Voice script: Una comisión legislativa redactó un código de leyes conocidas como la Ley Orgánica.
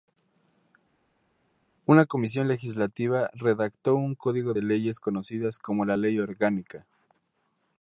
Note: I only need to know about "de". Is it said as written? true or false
true